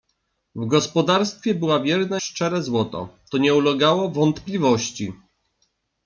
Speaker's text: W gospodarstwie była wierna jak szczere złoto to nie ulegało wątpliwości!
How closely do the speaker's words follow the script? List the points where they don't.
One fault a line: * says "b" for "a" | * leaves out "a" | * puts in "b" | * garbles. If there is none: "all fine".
* leaves out "jak"